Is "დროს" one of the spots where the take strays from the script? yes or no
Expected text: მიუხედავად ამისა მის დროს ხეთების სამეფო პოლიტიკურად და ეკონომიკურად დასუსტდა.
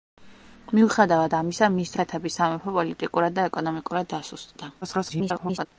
yes